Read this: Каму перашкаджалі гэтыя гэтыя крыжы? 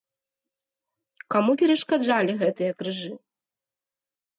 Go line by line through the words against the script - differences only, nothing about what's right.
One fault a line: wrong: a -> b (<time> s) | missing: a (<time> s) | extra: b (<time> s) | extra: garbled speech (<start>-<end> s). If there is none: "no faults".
missing: гэтыя (2.7 s)